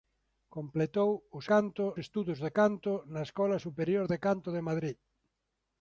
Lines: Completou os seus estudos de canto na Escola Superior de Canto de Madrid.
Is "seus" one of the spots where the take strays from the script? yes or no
yes